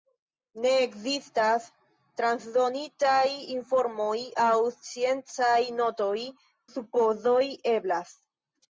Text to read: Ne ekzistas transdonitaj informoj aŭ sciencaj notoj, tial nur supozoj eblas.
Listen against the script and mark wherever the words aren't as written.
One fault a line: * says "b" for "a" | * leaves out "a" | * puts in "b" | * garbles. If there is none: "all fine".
* leaves out "tial nur"